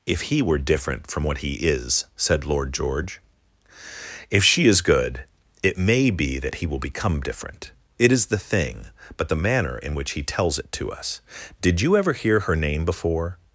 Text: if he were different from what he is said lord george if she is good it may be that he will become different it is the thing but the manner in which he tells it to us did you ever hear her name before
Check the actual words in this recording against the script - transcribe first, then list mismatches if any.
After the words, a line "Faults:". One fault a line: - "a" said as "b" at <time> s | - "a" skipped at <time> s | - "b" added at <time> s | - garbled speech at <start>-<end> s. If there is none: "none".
if he were different from what he is said lord george if she is good it may be that he will become different it is the thing but the manner in which he tells it to us did you ever hear her name before
Faults:
none